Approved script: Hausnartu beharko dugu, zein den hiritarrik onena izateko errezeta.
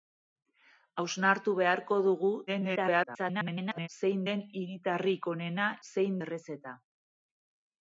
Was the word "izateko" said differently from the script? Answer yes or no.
yes